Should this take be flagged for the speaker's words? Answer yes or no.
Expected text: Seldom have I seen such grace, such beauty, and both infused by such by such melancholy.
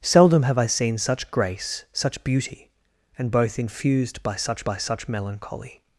no